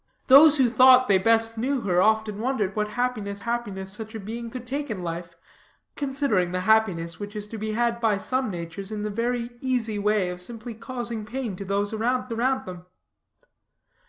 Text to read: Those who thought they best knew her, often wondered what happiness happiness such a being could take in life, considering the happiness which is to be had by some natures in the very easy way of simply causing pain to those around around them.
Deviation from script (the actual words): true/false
false